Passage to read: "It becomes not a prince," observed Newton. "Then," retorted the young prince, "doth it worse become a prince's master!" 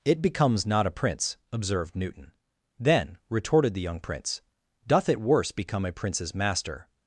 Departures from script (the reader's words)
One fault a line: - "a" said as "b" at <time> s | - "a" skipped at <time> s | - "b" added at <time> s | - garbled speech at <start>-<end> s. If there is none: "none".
none